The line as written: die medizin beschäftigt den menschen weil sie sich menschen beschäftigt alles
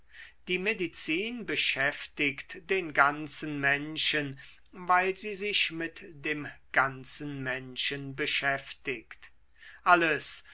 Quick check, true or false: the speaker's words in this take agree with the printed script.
false